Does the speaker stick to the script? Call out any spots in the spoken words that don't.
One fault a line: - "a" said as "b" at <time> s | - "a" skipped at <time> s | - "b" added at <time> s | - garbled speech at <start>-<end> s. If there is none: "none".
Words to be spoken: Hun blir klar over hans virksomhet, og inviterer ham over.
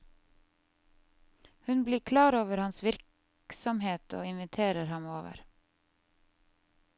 none